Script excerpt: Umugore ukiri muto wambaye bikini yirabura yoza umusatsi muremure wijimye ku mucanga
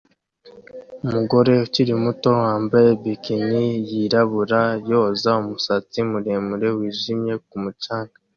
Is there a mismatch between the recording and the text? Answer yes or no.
no